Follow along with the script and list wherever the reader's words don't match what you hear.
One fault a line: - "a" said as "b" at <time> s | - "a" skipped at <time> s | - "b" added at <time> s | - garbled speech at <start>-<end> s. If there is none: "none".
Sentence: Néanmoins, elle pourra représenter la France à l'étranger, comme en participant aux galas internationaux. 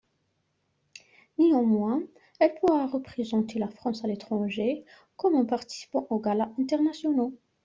none